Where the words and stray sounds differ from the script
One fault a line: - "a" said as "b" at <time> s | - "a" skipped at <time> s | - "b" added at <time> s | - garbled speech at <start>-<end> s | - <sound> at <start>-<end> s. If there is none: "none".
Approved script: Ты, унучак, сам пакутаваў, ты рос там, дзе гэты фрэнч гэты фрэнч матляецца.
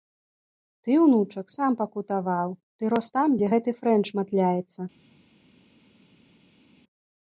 - "гэты фрэнч" skipped at 4.1 s